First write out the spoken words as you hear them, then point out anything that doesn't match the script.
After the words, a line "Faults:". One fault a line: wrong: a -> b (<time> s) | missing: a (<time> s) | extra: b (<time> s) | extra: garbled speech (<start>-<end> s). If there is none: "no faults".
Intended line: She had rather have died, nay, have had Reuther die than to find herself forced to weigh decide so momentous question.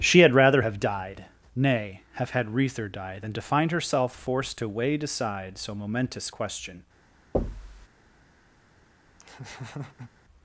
She had rather have died, nay, have had Reuther die than to find herself forced to weigh decide so momentous question.
Faults:
no faults